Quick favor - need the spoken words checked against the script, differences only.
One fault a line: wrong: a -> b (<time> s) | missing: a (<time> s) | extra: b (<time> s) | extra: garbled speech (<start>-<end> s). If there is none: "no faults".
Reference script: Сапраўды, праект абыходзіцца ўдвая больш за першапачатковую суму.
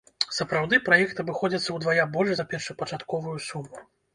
no faults